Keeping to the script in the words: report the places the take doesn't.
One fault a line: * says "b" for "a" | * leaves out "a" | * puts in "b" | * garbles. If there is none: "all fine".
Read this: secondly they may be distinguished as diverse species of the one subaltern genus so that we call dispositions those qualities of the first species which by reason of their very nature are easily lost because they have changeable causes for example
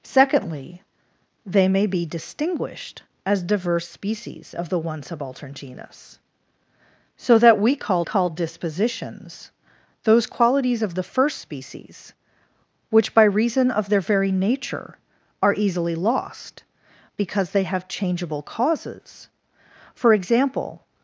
* puts in "call"